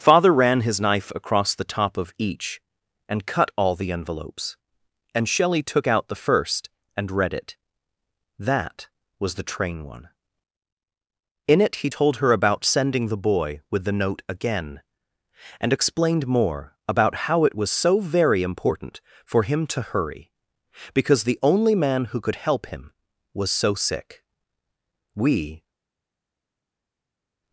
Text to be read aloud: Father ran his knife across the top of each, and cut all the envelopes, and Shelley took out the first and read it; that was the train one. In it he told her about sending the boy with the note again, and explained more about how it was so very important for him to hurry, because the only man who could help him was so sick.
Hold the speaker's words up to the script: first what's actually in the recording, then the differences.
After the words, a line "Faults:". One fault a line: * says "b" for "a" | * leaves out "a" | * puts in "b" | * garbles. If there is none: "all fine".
Father ran his knife across the top of each, and cut all the envelopes, and Shelley took out the first and read it; that was the train one. In it he told her about sending the boy with the note again, and explained more about how it was so very important for him to hurry, because the only man who could help him was so sick. We
Faults:
* puts in "We"